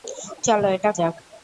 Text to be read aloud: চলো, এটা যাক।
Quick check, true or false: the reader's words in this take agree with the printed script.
true